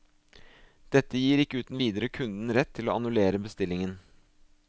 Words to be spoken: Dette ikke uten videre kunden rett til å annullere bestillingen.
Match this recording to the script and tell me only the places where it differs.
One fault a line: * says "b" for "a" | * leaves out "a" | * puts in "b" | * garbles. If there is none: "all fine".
* puts in "gir"